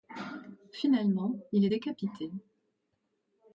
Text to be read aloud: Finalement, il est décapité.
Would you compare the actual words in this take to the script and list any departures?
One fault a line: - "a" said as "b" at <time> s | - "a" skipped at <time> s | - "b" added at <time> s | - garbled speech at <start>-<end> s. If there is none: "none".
none